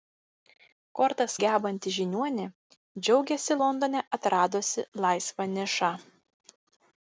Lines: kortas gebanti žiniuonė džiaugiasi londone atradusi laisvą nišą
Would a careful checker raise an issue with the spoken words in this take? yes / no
no